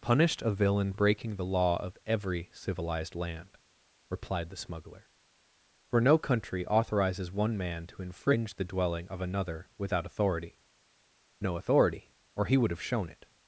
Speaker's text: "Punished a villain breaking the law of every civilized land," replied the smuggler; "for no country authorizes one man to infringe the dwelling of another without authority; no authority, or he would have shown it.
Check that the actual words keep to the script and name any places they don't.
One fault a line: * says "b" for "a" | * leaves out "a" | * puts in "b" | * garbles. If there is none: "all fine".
all fine